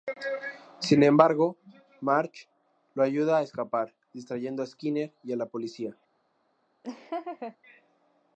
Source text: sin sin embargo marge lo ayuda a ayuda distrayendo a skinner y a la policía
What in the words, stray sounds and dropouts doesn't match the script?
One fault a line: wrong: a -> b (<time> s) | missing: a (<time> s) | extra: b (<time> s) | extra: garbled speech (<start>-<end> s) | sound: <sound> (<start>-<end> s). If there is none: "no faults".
missing: sin (1.0 s)
wrong: ayuda -> escapar (3.4 s)
sound: laugh (6.8-7.6 s)